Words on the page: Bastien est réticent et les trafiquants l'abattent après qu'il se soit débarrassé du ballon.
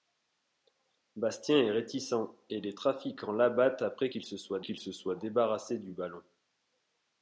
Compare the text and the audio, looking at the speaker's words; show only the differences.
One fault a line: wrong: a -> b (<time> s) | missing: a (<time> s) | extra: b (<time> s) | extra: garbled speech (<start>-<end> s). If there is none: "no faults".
extra: qu'il se soit (4.6 s)